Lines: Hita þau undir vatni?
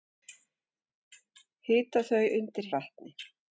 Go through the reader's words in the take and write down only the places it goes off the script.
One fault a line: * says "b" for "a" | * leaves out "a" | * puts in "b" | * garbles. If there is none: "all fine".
all fine